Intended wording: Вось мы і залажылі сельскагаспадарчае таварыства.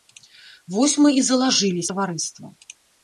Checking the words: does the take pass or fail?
fail